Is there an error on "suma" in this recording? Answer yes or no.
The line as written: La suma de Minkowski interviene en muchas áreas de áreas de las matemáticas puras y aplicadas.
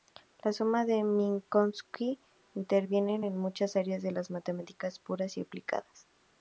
no